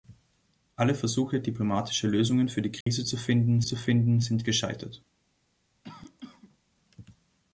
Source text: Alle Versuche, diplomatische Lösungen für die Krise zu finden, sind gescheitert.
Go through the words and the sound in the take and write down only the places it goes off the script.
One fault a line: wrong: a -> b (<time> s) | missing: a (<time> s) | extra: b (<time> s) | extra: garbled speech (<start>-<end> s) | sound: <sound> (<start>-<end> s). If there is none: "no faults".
sound: dropout (2.8-2.9 s)
extra: zu finden (3.6 s)
sound: cough (5.8-6.6 s)